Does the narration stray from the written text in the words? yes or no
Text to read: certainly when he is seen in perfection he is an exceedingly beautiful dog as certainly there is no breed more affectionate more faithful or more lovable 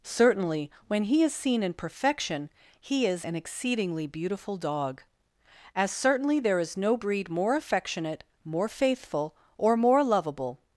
no